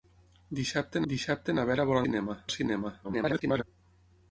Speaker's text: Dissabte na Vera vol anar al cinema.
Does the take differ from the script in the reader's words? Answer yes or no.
yes